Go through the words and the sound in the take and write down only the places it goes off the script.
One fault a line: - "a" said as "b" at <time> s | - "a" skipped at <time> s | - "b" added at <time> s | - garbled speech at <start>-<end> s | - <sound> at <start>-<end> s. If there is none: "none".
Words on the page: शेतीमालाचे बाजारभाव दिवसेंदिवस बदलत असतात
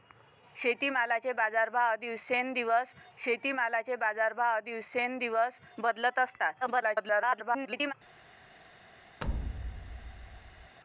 - "शेतीमालाचे बाजारभाव दिवसेंदिवस" added at 3.2 s
- garbled speech at 6.6-7.9 s
- thud at 9.2-10.8 s